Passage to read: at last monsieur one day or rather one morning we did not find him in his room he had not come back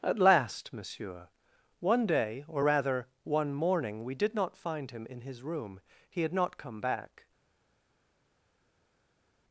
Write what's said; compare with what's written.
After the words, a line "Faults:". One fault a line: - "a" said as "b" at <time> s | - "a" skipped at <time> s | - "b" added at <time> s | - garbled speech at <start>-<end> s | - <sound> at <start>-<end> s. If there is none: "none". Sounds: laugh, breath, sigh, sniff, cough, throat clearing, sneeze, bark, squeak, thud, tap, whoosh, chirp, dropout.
at last monsieur one day or rather one morning we did not find him in his room he had not come back
Faults:
none